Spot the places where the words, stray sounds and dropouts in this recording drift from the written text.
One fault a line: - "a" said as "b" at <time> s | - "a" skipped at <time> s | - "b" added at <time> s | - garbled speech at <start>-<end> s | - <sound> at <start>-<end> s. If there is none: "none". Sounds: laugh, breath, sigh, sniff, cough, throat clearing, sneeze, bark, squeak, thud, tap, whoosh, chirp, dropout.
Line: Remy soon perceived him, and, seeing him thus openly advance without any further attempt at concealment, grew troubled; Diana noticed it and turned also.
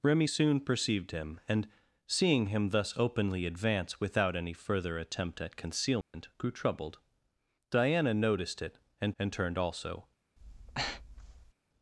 - dropout at 6.0-6.1 s
- "and" added at 9.2 s
- breath at 10.4-11.5 s